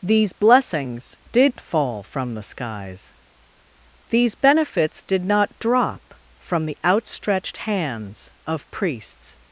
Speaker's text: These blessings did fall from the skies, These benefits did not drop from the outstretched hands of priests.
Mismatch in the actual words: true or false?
false